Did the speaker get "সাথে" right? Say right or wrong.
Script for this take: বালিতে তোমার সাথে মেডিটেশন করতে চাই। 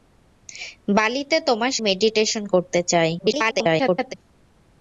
wrong